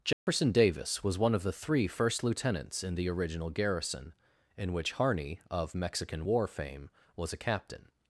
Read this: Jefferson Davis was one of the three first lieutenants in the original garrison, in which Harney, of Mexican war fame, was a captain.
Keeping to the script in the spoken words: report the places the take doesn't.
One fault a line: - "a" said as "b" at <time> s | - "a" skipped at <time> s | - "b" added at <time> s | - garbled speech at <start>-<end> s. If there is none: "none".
none